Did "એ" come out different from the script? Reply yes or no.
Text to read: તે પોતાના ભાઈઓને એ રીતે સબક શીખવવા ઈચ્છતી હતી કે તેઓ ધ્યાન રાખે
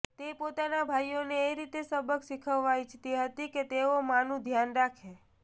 no